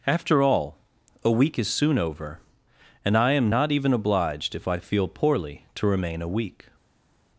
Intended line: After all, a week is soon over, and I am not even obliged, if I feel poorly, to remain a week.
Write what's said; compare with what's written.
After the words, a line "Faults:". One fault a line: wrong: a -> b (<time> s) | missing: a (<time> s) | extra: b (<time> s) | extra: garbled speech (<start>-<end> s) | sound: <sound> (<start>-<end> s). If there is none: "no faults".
After all, a week is soon over, and I am not even obliged, if I feel poorly, to remain a week.
Faults:
no faults